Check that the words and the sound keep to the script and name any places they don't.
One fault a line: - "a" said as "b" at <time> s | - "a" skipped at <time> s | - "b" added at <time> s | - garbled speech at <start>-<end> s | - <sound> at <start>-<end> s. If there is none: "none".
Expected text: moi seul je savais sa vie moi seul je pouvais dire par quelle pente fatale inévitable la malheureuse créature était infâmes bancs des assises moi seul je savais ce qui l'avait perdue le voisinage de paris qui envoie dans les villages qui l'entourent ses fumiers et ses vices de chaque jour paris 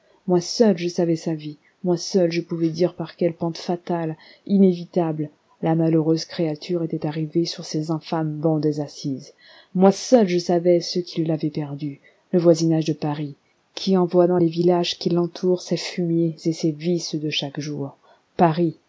- "arrivée sur ces" added at 7.0 s